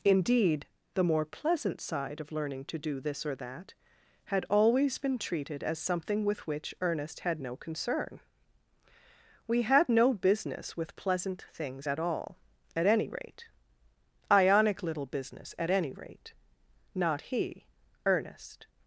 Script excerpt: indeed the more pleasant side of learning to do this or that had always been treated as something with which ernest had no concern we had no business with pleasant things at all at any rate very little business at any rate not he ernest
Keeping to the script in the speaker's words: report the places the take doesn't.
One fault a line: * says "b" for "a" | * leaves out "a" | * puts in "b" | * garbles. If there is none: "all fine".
* says "ionic" for "very"